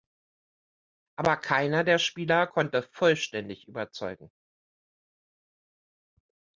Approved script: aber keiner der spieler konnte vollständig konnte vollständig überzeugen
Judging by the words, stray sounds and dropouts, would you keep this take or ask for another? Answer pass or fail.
fail